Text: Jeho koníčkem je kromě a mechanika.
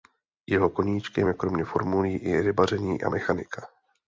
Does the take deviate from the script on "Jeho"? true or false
false